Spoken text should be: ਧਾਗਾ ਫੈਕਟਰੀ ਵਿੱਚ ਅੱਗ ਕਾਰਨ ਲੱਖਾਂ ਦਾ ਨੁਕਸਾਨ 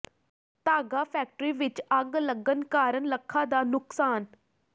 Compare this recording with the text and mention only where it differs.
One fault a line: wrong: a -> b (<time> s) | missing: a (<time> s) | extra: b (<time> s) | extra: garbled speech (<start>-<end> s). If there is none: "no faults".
extra: ਲੱਗਣ (2.2 s)